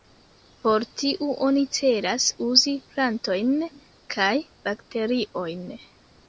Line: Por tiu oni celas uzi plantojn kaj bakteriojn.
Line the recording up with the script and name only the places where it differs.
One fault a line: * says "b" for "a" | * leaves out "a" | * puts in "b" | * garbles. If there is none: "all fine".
all fine